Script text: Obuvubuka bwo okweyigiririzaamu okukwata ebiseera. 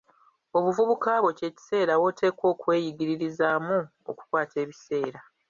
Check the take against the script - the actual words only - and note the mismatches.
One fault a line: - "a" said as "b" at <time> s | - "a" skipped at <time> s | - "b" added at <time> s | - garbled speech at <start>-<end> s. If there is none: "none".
- "kye kiseera woteekwa" added at 1.4 s